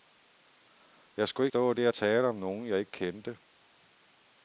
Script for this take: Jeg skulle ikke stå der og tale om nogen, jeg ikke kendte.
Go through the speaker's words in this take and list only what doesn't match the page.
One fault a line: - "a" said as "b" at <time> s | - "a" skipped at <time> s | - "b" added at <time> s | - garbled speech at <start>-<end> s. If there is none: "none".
- "ikke" skipped at 1.5 s